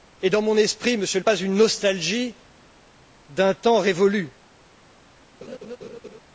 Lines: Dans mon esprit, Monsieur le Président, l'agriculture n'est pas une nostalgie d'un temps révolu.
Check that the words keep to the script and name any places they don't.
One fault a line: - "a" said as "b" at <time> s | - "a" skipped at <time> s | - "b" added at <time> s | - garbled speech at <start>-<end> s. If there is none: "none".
- "Président l'agriculture n'est" skipped at 1.2 s